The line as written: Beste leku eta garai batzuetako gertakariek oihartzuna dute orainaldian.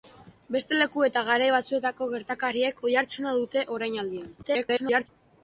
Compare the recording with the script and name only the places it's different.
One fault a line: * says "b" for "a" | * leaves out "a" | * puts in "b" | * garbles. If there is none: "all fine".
* garbles